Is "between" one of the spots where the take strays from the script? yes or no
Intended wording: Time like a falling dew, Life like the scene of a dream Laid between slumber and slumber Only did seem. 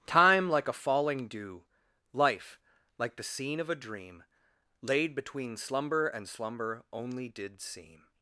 no